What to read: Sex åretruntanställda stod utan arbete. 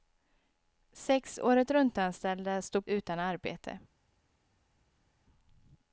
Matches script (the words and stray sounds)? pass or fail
pass